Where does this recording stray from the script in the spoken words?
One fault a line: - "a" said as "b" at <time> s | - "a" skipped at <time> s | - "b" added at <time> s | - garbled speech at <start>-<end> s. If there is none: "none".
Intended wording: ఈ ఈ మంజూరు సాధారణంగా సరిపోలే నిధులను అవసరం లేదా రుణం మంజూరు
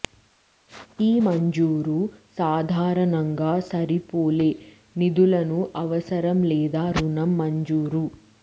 - "ఈ" skipped at 1.2 s